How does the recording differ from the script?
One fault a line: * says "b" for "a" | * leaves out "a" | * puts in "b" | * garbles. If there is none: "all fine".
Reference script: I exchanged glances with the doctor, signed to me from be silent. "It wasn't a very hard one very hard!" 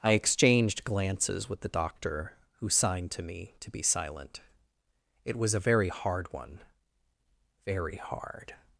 * puts in "who"
* says "to" for "from"
* says "was" for "wasn't"